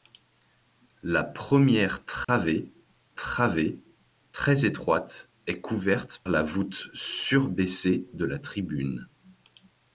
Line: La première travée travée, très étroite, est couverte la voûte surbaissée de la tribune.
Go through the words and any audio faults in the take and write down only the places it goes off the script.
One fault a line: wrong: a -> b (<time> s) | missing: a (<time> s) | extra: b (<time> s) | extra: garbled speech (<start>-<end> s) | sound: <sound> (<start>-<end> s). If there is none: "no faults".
sound: dropout (2.2-2.3 s)